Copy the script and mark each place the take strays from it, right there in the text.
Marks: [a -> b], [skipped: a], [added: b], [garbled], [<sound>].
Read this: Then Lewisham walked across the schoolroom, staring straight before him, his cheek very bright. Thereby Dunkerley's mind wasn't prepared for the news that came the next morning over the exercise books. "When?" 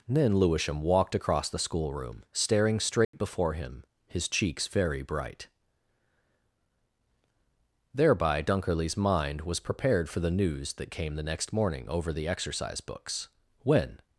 Then Lewisham walked across the schoolroom, staring straight [dropout] before him, his [cheek -> cheeks] very bright. Thereby Dunkerley's mind [wasn't -> was] prepared for the news that came the next morning over the exercise books. "When?"